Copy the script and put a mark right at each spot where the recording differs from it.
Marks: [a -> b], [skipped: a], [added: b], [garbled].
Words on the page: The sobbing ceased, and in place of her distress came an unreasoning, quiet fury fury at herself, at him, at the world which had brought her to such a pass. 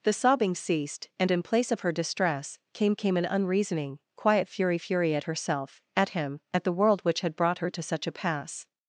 The sobbing ceased, and in place of her distress came [added: came] an unreasoning, quiet fury fury at herself, at him, at the world which had brought her to such a pass.